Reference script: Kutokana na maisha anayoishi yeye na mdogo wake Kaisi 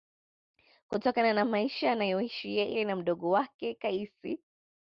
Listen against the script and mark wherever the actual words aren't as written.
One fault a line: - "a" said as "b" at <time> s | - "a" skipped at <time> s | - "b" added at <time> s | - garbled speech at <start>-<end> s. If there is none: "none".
none